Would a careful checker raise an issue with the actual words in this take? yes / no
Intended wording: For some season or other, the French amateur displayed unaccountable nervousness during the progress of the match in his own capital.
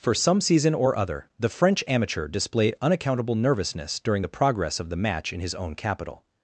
no